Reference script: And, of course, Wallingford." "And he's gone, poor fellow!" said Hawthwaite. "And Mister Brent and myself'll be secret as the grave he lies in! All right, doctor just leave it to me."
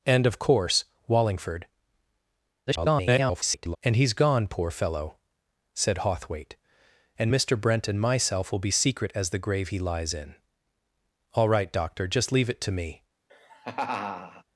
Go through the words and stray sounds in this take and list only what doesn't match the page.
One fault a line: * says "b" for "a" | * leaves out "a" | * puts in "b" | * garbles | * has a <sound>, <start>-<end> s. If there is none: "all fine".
* garbles
* has a laugh, 13.3-14.4 s